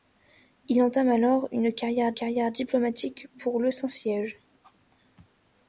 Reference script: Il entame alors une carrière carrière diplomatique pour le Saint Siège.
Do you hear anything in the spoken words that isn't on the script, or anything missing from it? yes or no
no